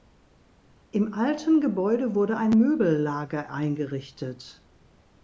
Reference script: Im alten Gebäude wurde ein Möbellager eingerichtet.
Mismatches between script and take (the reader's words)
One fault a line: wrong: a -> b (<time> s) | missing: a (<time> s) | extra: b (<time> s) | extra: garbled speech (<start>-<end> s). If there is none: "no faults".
no faults